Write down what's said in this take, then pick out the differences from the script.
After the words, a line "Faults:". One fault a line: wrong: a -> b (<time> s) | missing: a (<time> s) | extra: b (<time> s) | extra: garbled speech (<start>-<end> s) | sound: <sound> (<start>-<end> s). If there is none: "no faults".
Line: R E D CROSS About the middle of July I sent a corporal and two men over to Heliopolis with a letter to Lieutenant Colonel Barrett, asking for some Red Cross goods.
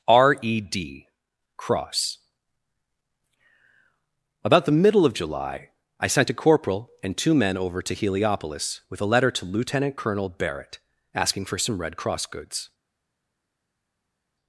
R E D CROSS About the middle of July I sent a corporal and two men over to Heliopolis with a letter to Lieutenant Colonel Barrett, asking for some Red Cross goods.
Faults:
no faults